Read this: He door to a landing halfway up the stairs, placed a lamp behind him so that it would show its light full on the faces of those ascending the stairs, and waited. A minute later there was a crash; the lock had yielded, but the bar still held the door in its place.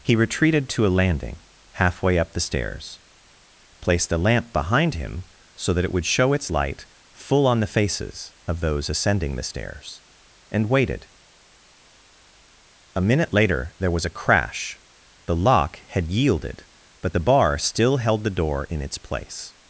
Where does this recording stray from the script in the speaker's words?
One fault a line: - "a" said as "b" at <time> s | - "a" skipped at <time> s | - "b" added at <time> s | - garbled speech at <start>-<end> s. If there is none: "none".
- "door" said as "retreated" at 0.1 s